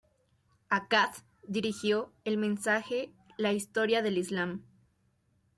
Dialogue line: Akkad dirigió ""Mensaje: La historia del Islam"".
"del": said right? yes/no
yes